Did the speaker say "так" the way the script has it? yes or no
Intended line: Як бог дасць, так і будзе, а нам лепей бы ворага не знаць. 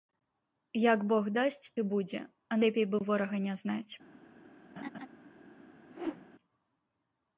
no